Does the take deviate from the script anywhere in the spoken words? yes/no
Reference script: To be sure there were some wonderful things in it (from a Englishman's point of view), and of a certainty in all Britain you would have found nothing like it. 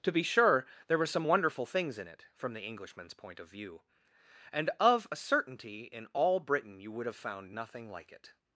yes